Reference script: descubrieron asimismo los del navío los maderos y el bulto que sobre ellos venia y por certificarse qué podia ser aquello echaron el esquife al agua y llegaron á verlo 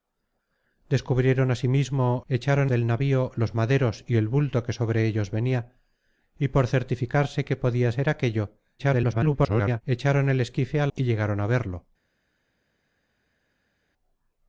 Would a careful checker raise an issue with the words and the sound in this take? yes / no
yes